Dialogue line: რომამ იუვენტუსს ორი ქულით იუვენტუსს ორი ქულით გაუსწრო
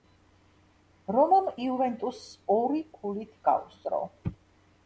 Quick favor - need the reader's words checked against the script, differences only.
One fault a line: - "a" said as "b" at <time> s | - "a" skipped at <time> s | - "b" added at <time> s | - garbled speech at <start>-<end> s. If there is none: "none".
- "იუვენტუსს ორი ქულით" skipped at 3.4 s